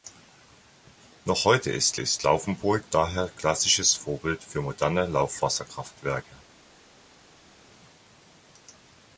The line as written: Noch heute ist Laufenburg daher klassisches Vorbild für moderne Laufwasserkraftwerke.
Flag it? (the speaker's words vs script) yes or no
yes